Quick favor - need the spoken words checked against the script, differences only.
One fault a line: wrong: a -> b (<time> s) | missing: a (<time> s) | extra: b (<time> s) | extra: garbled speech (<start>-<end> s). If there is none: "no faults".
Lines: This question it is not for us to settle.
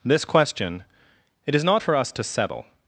no faults